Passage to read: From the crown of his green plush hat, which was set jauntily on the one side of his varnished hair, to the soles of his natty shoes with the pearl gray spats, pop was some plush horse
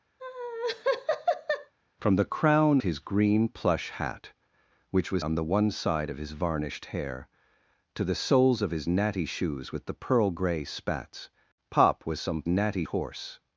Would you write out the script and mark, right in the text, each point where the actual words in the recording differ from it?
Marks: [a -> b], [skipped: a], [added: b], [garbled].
From the crown [skipped: of] his green plush hat, which was [skipped: set jauntily] on the one side of his varnished hair, to the soles of his natty shoes with the pearl gray spats, pop was some [plush -> natty] horse